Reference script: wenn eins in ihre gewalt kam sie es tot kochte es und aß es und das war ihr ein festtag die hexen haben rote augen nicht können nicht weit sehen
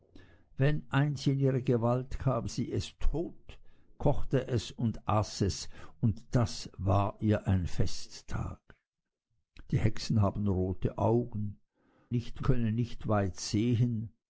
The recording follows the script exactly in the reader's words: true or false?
true